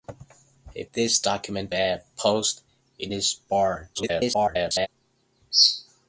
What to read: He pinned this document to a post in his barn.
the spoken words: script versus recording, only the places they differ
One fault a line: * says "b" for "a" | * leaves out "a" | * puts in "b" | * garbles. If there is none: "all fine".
* leaves out "pinned"
* leaves out "to"
* garbles